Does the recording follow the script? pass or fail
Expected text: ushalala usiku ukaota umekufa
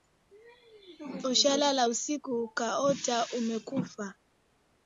pass